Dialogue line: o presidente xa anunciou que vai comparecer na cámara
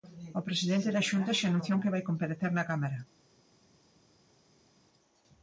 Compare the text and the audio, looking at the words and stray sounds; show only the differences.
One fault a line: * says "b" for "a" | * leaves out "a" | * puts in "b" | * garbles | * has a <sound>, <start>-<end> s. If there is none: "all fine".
* puts in "da xunta"